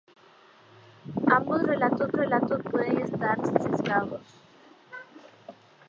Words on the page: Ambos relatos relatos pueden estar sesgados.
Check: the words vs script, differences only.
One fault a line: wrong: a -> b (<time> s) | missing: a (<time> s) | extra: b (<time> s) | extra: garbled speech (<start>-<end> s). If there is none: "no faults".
no faults